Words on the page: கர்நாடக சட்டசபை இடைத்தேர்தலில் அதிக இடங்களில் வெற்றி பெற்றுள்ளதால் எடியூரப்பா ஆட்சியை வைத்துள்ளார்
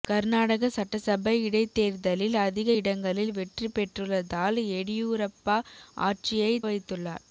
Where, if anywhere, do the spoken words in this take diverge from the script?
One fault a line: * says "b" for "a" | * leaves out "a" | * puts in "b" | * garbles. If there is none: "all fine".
all fine